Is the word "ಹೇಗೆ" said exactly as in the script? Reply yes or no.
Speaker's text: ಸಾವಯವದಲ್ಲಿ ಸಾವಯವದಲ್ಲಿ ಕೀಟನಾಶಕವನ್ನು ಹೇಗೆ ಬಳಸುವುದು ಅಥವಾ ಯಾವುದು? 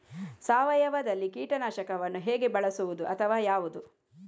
yes